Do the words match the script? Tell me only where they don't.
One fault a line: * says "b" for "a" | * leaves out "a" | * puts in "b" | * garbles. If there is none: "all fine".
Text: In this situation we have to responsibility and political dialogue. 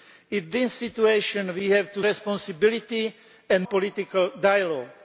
all fine